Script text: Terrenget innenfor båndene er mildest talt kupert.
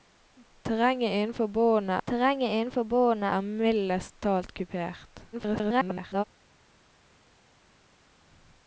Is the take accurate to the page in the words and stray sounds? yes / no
no